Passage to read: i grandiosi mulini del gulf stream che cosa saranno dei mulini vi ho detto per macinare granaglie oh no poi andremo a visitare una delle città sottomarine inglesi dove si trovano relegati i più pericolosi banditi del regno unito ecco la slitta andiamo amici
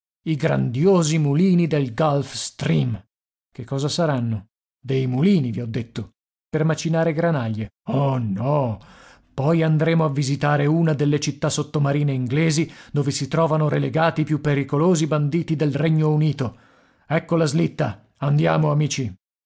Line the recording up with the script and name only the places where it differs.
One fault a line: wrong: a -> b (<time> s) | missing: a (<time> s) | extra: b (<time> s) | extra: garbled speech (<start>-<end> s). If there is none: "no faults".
no faults